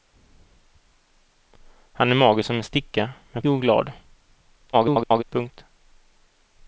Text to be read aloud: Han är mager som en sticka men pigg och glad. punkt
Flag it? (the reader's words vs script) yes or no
yes